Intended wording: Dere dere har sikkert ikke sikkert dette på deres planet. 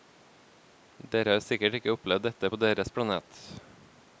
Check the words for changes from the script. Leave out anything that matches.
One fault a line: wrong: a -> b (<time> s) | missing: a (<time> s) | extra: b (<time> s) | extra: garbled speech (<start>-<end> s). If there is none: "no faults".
missing: dere (1.4 s)
wrong: sikkert -> opplevd (2.0 s)